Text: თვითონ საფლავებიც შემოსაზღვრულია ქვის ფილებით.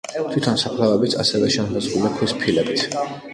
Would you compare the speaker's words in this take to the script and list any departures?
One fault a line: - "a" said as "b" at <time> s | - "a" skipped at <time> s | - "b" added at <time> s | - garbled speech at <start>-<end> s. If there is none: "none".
- "ასევე" added at 1.2 s